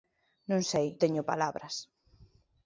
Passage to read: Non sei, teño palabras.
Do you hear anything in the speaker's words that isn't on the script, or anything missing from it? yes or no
no